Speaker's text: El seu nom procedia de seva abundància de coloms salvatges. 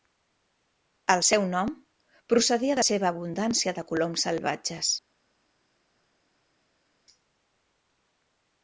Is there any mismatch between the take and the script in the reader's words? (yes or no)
no